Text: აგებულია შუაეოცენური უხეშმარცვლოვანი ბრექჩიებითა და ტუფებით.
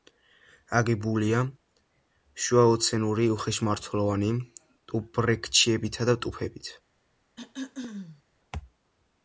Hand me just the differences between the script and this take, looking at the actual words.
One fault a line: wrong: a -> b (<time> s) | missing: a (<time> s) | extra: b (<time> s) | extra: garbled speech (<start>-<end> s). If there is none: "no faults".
extra: ტუფ (4.9 s)